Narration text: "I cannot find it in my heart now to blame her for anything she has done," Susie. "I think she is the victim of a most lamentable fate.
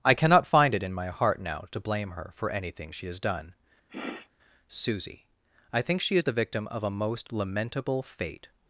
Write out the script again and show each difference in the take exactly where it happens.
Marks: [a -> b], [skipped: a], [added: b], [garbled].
"I cannot find it in my heart now to blame her for anything she has done," Susie. "I think she is the victim of a most lamentable fate.